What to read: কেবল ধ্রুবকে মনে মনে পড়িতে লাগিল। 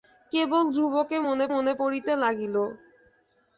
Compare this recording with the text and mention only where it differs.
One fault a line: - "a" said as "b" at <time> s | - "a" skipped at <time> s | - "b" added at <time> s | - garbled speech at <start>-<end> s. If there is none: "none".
none